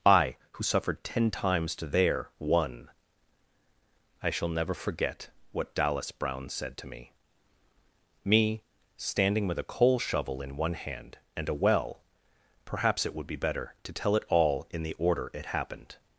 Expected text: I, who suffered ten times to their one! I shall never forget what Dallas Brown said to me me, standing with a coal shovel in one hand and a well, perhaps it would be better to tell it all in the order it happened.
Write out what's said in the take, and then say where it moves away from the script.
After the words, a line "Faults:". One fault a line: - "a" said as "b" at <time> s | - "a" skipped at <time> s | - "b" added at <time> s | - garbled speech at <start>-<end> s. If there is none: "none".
I, who suffered ten times to their one! I shall never forget what Dallas Brown said to me me, standing with a coal shovel in one hand and a well, perhaps it would be better to tell it all in the order it happened.
Faults:
none